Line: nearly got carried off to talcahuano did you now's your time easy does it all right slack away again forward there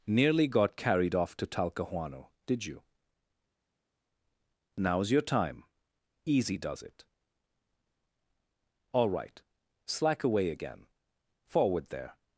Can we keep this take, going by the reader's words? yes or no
yes